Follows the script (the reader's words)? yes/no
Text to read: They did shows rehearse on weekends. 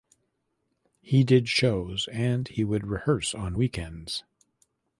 no